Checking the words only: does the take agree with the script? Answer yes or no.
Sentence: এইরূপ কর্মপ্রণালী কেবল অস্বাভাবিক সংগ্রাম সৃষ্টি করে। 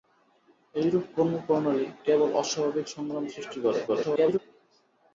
no